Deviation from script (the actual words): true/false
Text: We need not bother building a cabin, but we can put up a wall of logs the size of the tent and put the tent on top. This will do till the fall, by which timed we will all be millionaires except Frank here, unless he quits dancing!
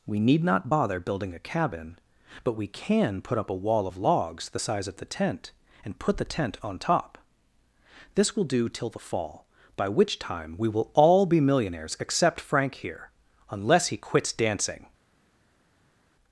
true